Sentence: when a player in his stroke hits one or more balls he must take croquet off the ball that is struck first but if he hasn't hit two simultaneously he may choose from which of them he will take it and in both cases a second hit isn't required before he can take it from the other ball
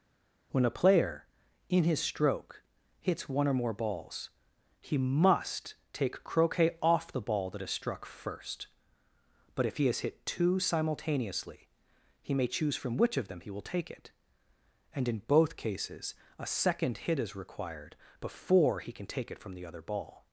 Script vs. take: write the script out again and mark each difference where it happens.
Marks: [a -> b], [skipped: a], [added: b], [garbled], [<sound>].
when a player in his stroke hits one or more balls he must take croquet off the ball that is struck first but if he [hasn't -> has] hit two simultaneously he may choose from which of them he will take it and in both cases a second hit [isn't -> is] required before he can take it from the other ball